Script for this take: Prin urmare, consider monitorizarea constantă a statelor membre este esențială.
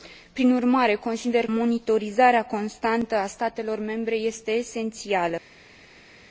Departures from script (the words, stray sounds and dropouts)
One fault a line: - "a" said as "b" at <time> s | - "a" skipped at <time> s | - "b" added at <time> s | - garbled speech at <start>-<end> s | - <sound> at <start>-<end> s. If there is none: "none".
none